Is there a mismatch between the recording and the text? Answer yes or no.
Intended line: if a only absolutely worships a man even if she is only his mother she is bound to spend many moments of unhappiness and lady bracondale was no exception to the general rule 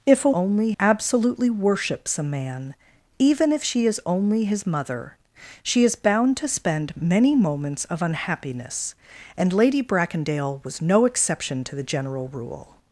no